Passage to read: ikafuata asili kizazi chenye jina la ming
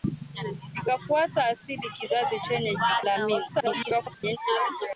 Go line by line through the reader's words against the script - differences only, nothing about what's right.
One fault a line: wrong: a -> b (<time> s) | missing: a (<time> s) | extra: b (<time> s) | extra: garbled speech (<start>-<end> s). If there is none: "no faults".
missing: jina (2.8 s)
extra: garbled speech (3.5-4.4 s)